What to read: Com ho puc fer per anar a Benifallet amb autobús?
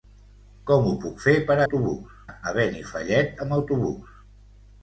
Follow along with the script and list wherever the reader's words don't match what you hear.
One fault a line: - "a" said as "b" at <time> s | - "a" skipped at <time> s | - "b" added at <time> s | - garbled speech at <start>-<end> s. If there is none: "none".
- "anar" said as "autobús" at 1.7 s